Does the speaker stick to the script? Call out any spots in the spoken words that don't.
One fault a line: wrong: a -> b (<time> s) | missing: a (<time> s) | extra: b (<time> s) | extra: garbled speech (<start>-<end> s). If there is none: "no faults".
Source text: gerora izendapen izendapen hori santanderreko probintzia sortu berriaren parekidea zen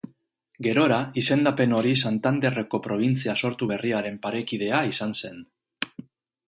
missing: izendapen (1.8 s)
extra: izan (4.9 s)